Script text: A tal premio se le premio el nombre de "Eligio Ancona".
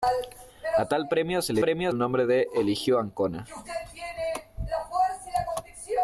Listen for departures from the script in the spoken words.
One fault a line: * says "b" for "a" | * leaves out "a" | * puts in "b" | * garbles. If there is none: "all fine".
all fine